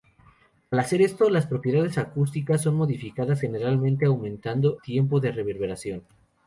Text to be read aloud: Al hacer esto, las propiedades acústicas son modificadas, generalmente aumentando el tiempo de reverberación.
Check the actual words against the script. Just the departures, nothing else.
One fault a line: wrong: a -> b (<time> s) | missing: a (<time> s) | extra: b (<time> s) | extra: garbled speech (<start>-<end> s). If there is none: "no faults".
missing: el (4.8 s)